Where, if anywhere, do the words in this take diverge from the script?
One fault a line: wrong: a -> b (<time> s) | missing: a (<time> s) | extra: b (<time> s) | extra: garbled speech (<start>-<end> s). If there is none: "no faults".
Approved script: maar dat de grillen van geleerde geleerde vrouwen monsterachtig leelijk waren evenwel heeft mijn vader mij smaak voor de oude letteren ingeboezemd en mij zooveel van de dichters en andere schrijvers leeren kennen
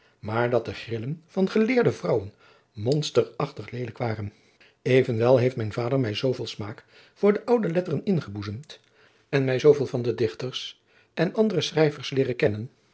missing: geleerde (1.9 s)
extra: zooveel (6.1 s)